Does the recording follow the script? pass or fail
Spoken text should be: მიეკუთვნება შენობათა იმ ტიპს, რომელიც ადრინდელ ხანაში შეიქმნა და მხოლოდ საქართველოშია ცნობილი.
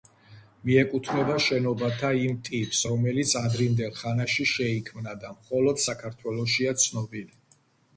pass